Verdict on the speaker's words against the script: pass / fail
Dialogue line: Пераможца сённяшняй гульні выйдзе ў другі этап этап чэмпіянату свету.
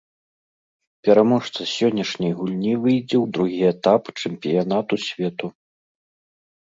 fail